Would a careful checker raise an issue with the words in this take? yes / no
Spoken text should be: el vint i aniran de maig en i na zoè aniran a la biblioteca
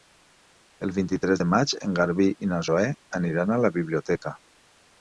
yes